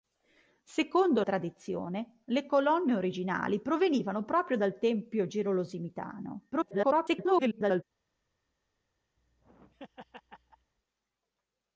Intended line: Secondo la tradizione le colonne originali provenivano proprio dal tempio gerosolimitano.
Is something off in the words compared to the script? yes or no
yes